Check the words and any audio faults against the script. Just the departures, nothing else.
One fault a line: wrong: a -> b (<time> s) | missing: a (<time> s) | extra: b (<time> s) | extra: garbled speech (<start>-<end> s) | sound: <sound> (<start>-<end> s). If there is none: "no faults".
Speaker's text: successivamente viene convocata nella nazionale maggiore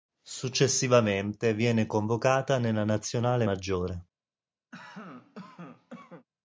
sound: cough (4.7-6.3 s)